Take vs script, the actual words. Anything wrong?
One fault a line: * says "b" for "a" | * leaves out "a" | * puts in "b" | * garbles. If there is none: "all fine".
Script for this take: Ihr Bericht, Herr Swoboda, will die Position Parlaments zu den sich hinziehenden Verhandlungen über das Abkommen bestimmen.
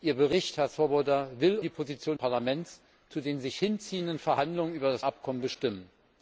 all fine